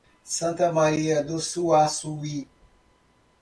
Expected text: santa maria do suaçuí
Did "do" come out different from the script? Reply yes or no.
no